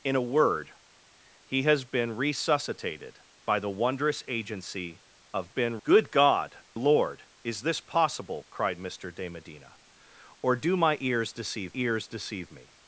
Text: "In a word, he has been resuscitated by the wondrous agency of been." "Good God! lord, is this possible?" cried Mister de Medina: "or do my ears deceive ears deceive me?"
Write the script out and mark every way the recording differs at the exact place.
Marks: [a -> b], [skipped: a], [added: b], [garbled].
"In a word, he has been resuscitated by the wondrous agency of been." "Good God! lord, is this possible?" cried Mister de Medina: "or do my ears deceive ears deceive me?"